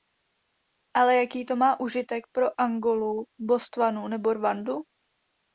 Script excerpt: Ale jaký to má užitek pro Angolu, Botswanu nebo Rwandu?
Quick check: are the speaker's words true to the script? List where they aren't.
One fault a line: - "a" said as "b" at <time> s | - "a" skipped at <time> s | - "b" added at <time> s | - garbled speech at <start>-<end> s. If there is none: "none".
none